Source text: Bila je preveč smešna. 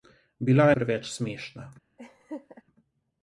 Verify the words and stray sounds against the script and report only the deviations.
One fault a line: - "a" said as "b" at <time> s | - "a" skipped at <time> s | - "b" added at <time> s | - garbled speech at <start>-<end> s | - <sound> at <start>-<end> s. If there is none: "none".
- laugh at 2.0-2.6 s